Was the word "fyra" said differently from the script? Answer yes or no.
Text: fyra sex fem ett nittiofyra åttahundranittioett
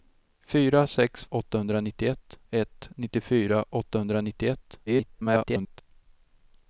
no